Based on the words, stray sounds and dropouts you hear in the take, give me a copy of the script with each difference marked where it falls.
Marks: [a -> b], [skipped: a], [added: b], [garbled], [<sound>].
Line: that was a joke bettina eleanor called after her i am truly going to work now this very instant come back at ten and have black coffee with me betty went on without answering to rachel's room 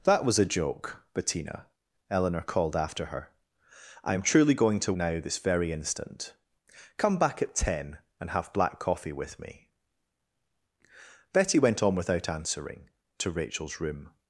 that was a joke bettina eleanor called after her i am truly going to [skipped: work] now this very instant come back at ten and have black coffee with me betty went on without answering to rachel's room